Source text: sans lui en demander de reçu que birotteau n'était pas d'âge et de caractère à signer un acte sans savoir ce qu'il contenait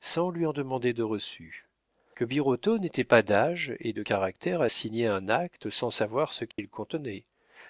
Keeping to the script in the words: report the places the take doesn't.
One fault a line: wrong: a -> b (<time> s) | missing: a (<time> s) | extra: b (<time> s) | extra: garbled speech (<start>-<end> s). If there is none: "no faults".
no faults